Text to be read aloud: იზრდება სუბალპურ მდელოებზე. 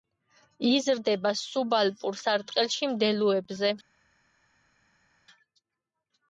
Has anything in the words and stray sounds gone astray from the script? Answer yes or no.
yes